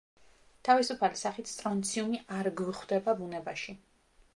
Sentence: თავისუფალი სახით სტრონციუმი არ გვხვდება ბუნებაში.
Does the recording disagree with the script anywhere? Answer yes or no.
no